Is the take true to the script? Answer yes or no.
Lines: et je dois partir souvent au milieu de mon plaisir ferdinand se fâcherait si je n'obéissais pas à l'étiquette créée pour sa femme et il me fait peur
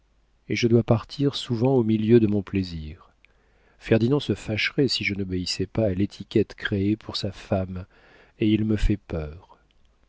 yes